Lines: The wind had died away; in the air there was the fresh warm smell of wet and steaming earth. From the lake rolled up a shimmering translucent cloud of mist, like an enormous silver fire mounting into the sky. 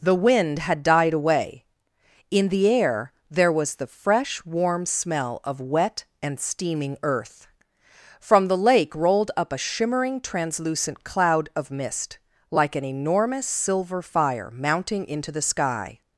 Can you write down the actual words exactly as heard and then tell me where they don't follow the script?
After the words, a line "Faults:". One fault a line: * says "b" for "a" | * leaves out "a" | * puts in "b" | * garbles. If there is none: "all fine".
The wind had died away; in the air there was the fresh warm smell of wet and steaming earth. From the lake rolled up a shimmering translucent cloud of mist, like an enormous silver fire mounting into the sky.
Faults:
all fine